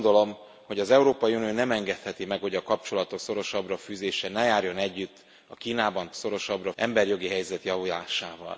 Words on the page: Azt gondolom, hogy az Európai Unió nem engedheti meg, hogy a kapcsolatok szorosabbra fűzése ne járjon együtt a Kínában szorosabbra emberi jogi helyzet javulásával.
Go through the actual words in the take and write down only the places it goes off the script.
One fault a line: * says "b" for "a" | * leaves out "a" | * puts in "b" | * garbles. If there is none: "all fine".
all fine